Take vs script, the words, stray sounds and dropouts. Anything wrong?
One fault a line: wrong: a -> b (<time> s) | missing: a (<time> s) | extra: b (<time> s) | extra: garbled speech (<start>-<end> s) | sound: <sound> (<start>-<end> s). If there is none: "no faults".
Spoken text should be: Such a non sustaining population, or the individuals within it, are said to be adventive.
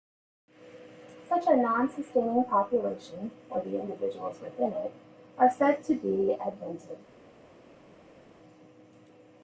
no faults